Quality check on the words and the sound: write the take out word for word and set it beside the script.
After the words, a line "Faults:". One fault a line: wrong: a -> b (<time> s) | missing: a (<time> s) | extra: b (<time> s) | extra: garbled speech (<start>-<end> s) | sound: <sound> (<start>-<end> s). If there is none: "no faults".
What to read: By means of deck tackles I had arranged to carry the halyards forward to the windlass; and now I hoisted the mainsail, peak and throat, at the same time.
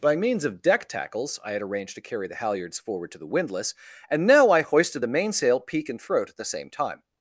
By means of deck tackles I had arranged to carry the halyards forward to the windlass; and now I hoisted the mainsail, peak and throat, at the same time.
Faults:
no faults